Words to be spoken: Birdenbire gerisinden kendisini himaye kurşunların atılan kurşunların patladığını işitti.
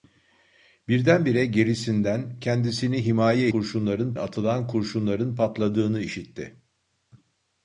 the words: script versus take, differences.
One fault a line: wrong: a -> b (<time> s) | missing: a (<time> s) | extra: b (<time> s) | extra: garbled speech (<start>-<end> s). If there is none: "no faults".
no faults